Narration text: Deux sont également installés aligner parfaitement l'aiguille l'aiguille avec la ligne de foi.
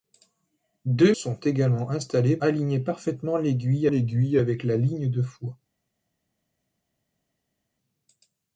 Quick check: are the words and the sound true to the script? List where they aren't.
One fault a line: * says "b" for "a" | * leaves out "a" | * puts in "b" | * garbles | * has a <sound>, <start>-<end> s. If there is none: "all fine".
all fine